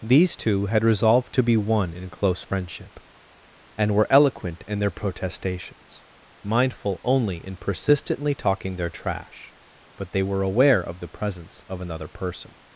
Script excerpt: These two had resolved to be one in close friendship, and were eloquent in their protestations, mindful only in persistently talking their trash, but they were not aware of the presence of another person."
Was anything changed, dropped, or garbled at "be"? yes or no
no